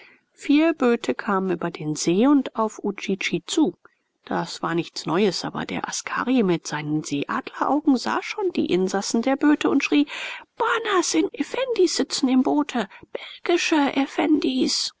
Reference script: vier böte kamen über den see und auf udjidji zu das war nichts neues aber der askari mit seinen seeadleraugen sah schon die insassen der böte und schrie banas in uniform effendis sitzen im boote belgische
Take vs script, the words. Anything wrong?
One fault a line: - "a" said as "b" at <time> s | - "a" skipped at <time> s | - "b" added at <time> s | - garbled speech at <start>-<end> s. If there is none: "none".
- "uniform" skipped at 11.2 s